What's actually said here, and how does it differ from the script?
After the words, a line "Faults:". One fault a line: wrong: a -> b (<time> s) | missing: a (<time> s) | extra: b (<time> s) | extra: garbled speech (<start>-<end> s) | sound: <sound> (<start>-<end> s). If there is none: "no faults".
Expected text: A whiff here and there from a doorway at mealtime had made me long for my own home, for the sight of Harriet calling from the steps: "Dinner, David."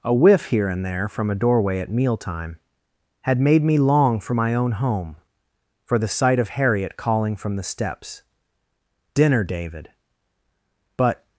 A whiff here and there from a doorway at mealtime had made me long for my own home, for the sight of Harriet calling from the steps: "Dinner, David." But
Faults:
extra: But (11.0 s)